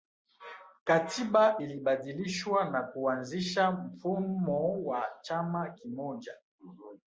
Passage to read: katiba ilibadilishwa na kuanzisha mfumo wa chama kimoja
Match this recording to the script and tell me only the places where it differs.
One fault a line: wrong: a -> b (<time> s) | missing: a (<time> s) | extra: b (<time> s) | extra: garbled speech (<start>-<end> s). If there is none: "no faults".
no faults